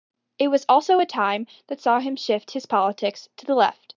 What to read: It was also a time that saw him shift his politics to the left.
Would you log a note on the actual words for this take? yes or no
no